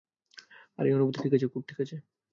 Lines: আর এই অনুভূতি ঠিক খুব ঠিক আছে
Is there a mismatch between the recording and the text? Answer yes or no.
yes